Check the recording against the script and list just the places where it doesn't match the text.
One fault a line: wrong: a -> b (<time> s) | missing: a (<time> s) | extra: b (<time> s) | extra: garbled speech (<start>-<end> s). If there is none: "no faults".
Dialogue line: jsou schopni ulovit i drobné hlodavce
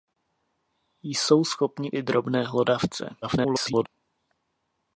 missing: ulovit (1.9 s)
extra: garbled speech (3.2-3.9 s)